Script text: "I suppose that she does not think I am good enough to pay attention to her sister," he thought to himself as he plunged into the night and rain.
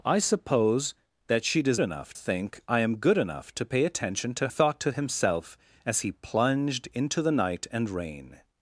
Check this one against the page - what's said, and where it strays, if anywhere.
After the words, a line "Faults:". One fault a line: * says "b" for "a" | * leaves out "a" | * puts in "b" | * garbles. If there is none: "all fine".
"I suppose that she does enough think I am good enough to pay attention to thought to himself as he plunged into the night and rain.
Faults:
* says "enough" for "not"
* leaves out "her sister he"